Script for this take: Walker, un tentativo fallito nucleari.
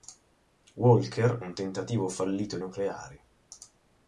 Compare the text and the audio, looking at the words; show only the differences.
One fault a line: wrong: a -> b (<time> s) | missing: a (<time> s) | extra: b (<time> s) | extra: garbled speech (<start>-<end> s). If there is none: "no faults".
no faults